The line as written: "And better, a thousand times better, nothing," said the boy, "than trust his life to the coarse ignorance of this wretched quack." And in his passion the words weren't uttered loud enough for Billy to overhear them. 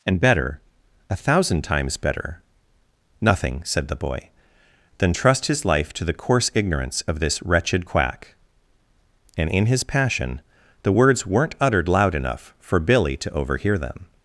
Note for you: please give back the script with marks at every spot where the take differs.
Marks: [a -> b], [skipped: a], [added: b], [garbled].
"And better, a thousand times better, nothing," said the boy, "than trust his life to the coarse ignorance of this wretched quack." And in his passion the words weren't uttered loud enough for Billy to overhear them.